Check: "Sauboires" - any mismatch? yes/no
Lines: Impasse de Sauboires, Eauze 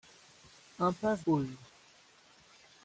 yes